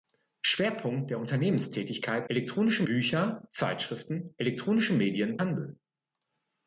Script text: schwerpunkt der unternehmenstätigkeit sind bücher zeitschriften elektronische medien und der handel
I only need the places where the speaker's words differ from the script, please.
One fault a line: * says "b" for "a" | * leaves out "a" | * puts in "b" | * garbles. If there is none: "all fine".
* says "elektronische" for "sind"
* leaves out "und der"